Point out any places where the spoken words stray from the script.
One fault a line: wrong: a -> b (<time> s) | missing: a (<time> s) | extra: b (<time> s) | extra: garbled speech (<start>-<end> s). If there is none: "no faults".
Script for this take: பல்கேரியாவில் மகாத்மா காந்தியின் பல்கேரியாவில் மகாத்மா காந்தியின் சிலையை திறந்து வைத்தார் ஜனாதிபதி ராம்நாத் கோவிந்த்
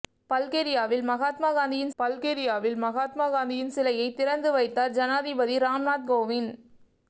no faults